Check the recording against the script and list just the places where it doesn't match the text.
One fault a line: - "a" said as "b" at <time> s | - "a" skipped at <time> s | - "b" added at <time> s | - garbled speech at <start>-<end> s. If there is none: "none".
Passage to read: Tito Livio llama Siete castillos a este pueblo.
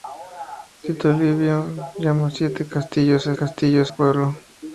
- "este" said as "castillos" at 3.3 s